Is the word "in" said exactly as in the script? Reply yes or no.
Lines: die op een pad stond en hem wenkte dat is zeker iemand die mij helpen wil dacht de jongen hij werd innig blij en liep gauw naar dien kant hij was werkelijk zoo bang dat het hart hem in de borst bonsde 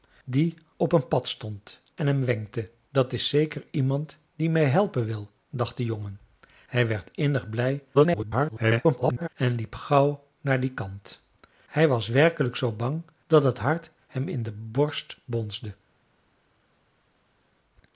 yes